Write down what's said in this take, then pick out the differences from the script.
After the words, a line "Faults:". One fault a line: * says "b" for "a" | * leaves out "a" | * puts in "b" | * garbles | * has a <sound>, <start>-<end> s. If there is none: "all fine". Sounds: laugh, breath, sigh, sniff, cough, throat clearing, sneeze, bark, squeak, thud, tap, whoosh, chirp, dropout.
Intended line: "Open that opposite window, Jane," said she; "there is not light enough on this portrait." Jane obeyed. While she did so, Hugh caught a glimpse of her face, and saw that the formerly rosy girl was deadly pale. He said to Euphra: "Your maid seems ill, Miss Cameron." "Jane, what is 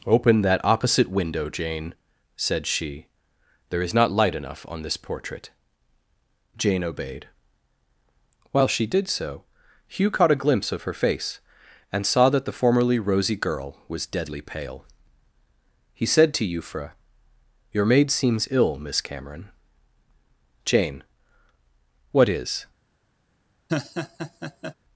"Open that opposite window, Jane," said she; "there is not light enough on this portrait." Jane obeyed. While she did so, Hugh caught a glimpse of her face, and saw that the formerly rosy girl was deadly pale. He said to Euphra: "Your maid seems ill, Miss Cameron." "Jane, what is
Faults:
* has a laugh, 23.7-24.7 s